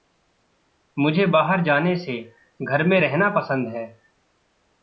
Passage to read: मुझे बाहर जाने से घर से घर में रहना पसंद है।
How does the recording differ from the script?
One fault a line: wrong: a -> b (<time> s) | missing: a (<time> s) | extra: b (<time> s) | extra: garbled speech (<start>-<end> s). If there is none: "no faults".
missing: से घर (2.8 s)